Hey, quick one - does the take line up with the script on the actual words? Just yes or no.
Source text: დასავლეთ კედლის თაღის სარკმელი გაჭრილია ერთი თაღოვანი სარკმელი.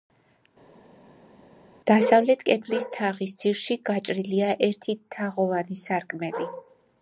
no